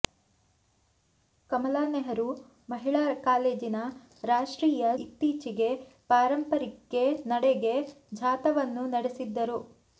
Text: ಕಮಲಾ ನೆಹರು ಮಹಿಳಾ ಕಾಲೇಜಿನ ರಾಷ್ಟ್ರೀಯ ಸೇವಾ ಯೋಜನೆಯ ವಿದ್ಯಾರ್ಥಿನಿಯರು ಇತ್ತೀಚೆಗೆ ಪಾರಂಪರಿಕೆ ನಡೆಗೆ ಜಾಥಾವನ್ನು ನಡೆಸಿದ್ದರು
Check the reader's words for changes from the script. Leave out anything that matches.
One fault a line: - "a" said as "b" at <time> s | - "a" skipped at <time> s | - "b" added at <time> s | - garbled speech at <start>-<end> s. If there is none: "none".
- "ಸೇವಾ ಯೋಜನೆಯ ವಿದ್ಯಾರ್ಥಿನಿಯರು" skipped at 4.8 s